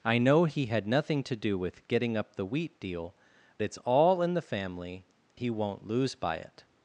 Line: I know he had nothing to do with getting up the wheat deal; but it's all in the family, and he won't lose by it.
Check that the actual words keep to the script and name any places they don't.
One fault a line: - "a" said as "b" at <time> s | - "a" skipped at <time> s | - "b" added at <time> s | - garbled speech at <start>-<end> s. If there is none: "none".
- "but" skipped at 3.1 s
- "and" skipped at 5.0 s